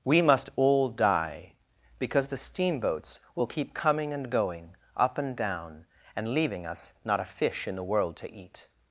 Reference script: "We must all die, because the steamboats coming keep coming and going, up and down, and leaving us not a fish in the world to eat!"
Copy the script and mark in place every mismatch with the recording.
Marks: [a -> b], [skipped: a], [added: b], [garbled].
"We must all die, because the steamboats [coming -> will] keep coming and going, up and down, and leaving us not a fish in the world to eat!"